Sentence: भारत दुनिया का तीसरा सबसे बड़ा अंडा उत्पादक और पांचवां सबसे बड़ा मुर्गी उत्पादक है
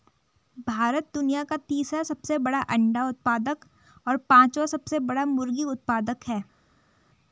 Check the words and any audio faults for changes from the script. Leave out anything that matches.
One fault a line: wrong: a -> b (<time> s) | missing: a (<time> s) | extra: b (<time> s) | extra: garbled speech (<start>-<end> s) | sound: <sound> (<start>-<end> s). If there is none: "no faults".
no faults